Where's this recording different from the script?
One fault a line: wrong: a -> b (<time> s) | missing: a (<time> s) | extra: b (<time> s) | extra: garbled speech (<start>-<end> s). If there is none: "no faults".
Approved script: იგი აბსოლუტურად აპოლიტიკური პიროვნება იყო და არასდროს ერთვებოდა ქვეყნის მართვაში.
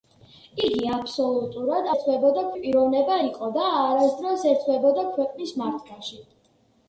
wrong: აპოლიტიკური -> ერთვებოდა (2.0 s)